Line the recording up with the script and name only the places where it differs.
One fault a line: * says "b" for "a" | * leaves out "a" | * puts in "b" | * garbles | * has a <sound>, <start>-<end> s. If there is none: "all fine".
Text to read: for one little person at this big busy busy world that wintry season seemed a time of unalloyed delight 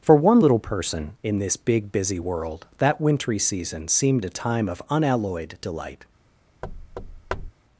* says "in" for "at"
* leaves out "busy"
* has a thud, 6.6-7.5 s